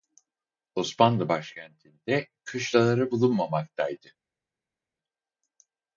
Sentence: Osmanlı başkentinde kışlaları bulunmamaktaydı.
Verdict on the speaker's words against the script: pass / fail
pass